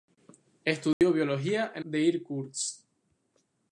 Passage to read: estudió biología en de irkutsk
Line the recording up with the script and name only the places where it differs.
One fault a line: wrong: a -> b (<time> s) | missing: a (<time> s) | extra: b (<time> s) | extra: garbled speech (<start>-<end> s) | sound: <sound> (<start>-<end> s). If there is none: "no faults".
sound: dropout (0.9-1.0 s)